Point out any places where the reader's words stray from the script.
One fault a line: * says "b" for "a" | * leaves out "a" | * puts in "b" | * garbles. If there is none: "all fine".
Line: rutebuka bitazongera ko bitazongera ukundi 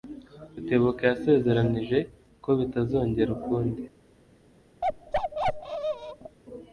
* says "yasezeranije" for "bitazongera"